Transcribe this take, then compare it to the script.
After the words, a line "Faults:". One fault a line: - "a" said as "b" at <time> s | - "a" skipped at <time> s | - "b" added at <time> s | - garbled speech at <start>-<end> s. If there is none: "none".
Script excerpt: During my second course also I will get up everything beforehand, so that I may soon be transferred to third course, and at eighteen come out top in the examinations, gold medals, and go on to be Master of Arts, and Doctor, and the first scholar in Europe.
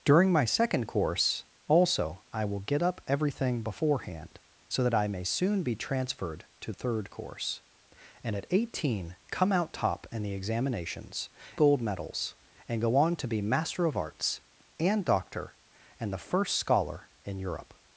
During my second course also I will get up everything beforehand, so that I may soon be transferred to third course, and at eighteen come out top in the examinations, gold medals, and go on to be Master of Arts, and Doctor, and the first scholar in Europe.
Faults:
none